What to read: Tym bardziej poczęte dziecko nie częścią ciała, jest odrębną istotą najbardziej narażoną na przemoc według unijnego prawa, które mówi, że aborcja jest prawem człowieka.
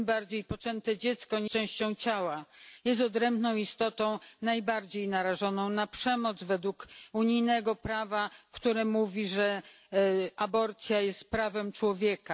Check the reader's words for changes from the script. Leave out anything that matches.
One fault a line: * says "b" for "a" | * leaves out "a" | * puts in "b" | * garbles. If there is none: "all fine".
all fine